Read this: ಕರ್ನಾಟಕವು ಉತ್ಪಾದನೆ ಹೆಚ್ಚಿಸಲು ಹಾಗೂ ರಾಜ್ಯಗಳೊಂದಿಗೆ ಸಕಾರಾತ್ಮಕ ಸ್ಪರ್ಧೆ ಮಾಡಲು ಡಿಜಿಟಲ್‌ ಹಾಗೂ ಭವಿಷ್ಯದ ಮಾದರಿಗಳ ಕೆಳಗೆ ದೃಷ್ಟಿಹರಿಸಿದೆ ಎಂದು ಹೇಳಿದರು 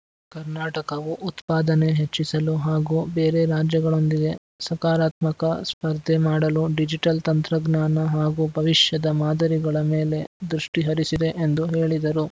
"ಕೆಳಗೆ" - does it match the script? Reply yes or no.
no